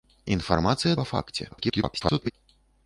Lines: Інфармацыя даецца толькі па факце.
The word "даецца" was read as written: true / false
false